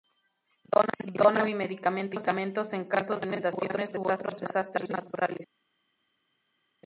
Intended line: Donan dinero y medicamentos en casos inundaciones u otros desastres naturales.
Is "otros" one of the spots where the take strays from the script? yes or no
no